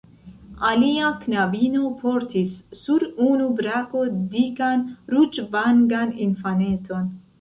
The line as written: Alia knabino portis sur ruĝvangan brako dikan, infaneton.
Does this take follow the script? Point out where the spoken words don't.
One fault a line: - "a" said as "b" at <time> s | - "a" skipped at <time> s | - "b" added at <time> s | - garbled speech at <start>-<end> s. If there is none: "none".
- "ruĝvangan" said as "unu" at 3.3 s
- "ruĝvangan" added at 5.2 s